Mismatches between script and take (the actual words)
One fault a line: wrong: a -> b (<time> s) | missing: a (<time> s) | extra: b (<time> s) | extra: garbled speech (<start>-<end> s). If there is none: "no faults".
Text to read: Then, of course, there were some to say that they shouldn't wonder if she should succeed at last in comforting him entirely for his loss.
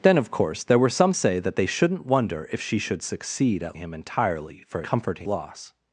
missing: to (1.1 s)
missing: last in comforting (3.8 s)
wrong: his -> comforting (4.8 s)